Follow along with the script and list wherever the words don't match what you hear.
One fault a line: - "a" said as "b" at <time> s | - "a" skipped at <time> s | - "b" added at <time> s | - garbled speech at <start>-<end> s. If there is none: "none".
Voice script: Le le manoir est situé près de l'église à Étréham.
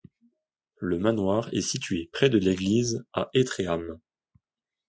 - "le" skipped at 1.0 s